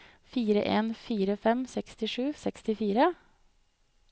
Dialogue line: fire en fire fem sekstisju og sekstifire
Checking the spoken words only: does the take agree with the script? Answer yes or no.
yes